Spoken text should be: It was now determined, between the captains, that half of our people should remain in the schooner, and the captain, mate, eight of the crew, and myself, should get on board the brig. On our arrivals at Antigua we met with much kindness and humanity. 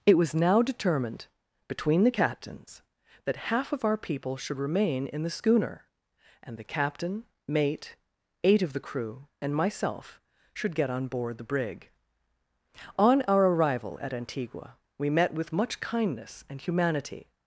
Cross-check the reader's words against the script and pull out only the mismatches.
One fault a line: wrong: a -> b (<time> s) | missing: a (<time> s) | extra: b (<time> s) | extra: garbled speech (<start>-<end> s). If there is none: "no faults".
wrong: arrivals -> arrival (13.5 s)